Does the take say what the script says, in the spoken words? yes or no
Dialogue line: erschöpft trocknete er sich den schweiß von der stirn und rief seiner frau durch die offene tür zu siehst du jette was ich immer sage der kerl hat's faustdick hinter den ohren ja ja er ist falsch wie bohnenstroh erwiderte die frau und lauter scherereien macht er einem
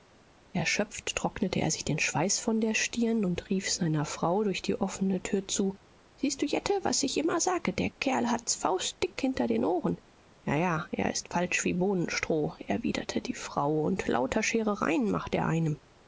yes